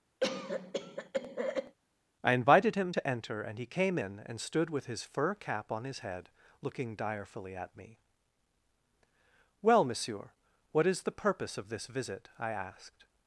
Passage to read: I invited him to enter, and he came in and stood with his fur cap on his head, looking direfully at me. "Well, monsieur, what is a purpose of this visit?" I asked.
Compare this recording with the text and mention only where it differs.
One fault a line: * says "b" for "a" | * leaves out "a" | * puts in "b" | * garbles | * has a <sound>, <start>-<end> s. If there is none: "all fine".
* has a cough, 0.2-1.8 s
* says "the" for "a"